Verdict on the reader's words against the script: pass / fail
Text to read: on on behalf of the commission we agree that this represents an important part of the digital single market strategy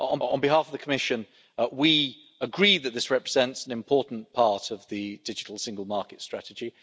pass